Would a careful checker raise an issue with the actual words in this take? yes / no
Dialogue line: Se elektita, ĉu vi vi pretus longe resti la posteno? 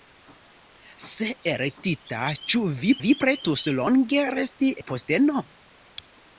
no